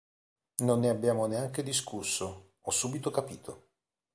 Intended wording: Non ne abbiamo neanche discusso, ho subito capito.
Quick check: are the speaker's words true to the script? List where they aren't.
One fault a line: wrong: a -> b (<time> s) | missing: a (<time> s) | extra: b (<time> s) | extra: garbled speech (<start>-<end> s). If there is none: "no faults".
no faults